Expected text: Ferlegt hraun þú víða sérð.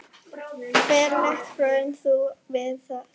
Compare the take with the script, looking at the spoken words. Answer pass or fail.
pass